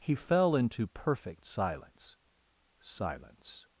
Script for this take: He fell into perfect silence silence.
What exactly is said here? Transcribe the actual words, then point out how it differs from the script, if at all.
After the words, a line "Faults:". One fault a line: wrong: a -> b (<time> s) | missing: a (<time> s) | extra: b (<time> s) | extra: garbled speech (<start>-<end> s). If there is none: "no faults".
He fell into perfect silence silence.
Faults:
no faults